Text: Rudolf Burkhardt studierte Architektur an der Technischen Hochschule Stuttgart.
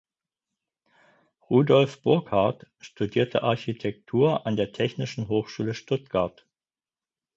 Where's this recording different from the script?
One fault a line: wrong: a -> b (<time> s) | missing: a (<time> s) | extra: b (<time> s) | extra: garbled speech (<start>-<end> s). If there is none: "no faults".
no faults